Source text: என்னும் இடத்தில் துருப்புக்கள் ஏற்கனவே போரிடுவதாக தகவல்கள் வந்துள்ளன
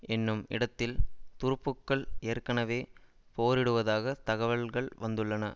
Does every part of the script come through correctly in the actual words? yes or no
yes